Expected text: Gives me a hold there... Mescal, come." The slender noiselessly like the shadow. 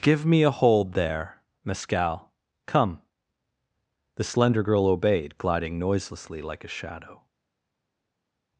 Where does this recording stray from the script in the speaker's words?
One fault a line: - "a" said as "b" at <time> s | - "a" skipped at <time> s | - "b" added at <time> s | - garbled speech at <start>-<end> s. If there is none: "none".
- "Gives" said as "Give" at 0.0 s
- "girl obeyed gliding" added at 4.6 s
- "the" said as "a" at 6.6 s